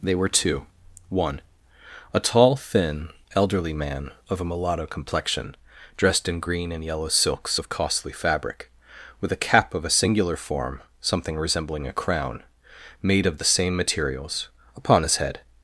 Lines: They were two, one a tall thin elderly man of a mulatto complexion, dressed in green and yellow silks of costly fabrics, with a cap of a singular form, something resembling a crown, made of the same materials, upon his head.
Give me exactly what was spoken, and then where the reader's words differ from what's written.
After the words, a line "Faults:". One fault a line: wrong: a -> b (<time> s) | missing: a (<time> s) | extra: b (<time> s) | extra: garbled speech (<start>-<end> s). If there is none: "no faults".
They were two, one a tall thin elderly man of a mulatto complexion, dressed in green and yellow silks of costly fabric, with a cap of a singular form, something resembling a crown, made of the same materials, upon his head.
Faults:
wrong: fabrics -> fabric (8.1 s)